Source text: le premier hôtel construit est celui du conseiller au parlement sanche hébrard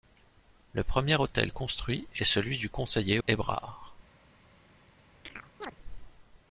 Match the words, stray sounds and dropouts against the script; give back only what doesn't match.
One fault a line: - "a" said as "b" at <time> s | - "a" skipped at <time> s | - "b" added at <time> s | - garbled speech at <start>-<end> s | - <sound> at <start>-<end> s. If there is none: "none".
- "au parlement sanche" skipped at 3.2 s
- chirp at 5.3-5.8 s